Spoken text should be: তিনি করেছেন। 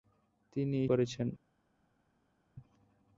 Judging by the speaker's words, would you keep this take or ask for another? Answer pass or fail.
pass